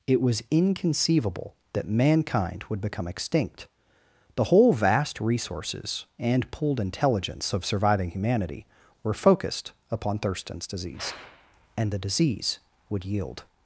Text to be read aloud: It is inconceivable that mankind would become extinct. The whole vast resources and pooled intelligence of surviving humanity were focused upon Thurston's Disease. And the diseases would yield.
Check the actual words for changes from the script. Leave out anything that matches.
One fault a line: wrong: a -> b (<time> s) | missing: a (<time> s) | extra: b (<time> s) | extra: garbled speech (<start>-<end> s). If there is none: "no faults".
wrong: is -> was (0.2 s)
wrong: diseases -> disease (12.0 s)